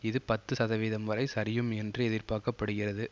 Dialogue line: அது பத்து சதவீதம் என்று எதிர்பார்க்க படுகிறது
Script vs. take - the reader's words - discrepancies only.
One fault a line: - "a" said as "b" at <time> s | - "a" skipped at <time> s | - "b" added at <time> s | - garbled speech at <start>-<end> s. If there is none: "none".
- "அது" said as "இது" at 0.0 s
- "வரை சரியும்" added at 1.1 s